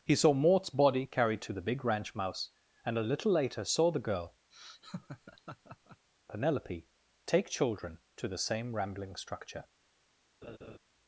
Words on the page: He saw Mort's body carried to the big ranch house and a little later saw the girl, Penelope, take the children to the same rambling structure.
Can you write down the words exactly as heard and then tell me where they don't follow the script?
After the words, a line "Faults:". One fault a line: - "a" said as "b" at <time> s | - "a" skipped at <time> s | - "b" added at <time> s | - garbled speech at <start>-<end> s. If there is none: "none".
He saw Mort's body carried to the big ranch mouse and a little later saw the girl, Penelope, take children to the same rambling structure.
Faults:
- "house" said as "mouse" at 2.1 s
- "the" skipped at 7.5 s